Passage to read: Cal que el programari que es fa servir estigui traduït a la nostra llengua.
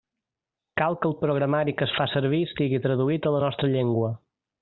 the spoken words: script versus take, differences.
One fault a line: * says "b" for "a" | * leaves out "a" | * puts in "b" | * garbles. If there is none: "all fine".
all fine